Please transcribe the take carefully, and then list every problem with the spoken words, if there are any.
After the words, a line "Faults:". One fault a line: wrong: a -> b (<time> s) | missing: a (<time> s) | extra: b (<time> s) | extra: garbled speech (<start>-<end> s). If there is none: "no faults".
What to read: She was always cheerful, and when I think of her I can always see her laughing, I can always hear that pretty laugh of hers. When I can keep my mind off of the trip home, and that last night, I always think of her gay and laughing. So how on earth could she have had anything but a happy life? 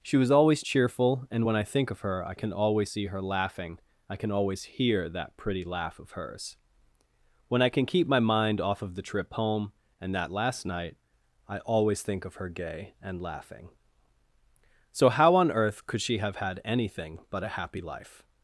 She was always cheerful, and when I think of her I can always see her laughing, I can always hear that pretty laugh of hers. When I can keep my mind off of the trip home, and that last night, I always think of her gay and laughing. So how on earth could she have had anything but a happy life?
Faults:
no faults